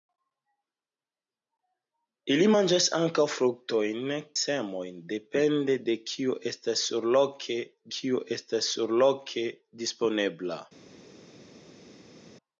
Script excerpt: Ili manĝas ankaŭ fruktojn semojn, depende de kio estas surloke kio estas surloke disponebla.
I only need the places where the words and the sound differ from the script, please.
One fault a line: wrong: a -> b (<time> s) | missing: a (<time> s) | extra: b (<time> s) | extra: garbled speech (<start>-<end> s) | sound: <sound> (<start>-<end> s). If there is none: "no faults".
no faults